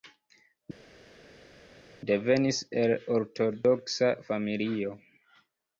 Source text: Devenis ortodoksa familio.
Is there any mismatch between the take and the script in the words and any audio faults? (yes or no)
yes